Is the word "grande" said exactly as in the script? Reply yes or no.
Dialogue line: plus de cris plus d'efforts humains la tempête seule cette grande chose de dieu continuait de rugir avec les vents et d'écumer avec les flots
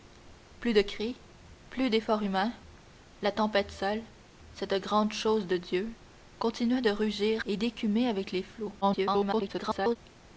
yes